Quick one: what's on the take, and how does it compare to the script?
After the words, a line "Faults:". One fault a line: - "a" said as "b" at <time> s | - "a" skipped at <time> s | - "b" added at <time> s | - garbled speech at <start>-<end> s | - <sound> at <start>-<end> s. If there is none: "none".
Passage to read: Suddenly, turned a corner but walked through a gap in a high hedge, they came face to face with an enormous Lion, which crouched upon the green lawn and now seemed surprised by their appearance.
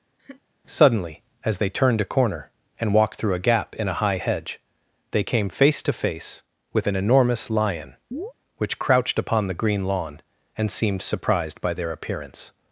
Suddenly, as they turned a corner and walked through a gap in a high hedge, they came face to face with an enormous Lion, which crouched upon the green lawn and seemed surprised by their appearance.
Faults:
- laugh at 0.2-0.4 s
- "as they" added at 1.4 s
- "but" said as "and" at 2.8 s
- chirp at 8.1-8.3 s
- "now" skipped at 10.7 s